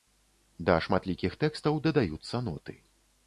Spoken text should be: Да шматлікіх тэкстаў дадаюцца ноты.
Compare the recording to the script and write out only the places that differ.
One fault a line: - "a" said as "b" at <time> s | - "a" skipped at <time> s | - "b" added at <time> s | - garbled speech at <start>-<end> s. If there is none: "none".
none